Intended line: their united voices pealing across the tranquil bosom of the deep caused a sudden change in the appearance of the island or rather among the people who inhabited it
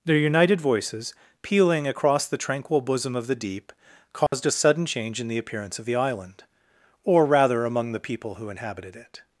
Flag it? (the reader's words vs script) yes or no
no